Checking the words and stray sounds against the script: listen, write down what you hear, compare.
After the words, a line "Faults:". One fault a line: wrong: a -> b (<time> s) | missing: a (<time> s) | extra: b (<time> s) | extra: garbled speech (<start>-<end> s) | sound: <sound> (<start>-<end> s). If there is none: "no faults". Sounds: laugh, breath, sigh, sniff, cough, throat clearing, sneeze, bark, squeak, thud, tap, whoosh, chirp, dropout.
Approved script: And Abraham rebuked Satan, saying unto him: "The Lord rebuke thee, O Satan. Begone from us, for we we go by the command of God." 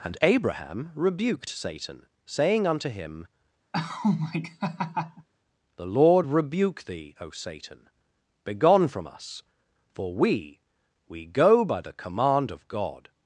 And Abraham rebuked Satan, saying unto him: "The Lord rebuke thee, O Satan. Begone from us, for we we go by the command of God."
Faults:
sound: laugh (3.7-5.3 s)